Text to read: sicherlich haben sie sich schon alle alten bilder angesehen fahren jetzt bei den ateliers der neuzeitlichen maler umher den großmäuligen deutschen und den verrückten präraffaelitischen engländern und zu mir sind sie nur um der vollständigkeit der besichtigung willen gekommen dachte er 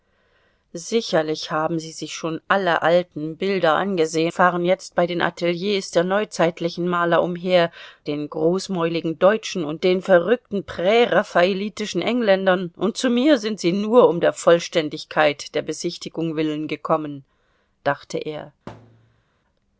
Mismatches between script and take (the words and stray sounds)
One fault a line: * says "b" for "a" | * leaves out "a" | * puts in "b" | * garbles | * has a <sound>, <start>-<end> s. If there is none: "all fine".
* has a thud, 18.7-19.2 s